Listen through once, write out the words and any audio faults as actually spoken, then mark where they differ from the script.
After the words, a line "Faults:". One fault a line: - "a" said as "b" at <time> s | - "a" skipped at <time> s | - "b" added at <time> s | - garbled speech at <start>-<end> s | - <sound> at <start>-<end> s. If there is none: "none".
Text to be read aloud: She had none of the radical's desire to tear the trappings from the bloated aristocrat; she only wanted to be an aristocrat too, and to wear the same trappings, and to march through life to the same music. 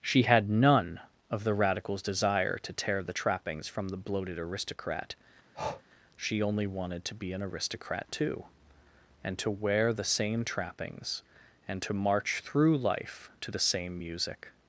She had none of the radical's desire to tear the trappings from the bloated aristocrat; she only wanted to be an aristocrat too, and to wear the same trappings, and to march through life to the same music.
Faults:
- breath at 5.5-5.8 s